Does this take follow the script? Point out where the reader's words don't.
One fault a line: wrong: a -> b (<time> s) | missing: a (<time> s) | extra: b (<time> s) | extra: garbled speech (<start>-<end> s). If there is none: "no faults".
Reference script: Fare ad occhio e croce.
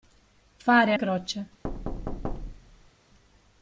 missing: ad occhio (0.9 s)